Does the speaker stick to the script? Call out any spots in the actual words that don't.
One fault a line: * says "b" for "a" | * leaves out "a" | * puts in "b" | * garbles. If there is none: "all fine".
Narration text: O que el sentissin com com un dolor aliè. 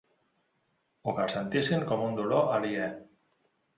* leaves out "com"